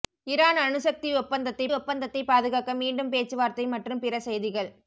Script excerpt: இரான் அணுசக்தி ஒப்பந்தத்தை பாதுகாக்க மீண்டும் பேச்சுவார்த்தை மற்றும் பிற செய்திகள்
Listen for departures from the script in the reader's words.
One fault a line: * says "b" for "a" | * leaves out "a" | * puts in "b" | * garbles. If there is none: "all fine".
* puts in "ஒப்பந்தத்தை"